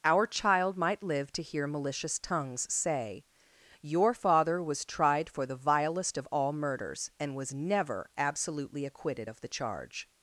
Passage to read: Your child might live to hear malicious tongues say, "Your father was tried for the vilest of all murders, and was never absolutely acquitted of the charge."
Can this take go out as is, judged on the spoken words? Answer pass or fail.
fail